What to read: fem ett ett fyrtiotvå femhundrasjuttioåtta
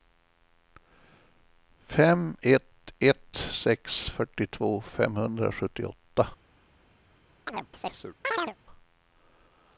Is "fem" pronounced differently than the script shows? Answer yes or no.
no